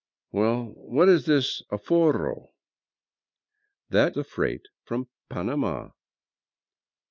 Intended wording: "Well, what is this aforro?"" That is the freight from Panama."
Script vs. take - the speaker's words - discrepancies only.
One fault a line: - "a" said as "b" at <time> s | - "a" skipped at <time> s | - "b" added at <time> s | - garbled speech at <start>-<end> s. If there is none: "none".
- "is" skipped at 4.1 s